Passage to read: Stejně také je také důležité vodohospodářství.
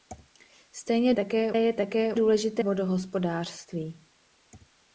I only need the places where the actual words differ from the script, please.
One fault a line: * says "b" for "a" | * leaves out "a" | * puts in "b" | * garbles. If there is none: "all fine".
all fine